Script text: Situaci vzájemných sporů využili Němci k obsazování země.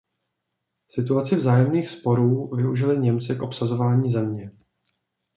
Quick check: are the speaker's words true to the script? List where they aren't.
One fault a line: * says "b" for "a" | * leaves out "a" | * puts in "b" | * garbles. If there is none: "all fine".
all fine